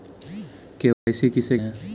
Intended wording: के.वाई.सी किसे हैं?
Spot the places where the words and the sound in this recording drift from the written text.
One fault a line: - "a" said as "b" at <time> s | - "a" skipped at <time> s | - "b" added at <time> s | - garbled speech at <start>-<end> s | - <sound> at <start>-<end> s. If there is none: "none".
- dropout at 0.9-1.1 s